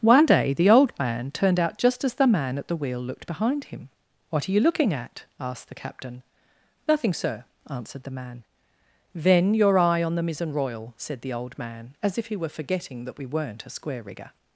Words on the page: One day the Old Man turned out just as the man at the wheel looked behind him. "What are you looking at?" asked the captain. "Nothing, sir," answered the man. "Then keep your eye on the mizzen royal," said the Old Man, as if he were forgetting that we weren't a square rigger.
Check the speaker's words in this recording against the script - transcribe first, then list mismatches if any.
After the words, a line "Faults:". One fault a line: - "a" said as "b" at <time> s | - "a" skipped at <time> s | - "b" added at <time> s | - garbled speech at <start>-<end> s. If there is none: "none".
One day the Old Man turned out just as the man at the wheel looked behind him. "What are you looking at?" asked the captain. "Nothing, sir," answered the man. "Then your eye on the mizzen royal," said the Old Man, as if he were forgetting that we weren't a square rigger.
Faults:
- "keep" skipped at 9.5 s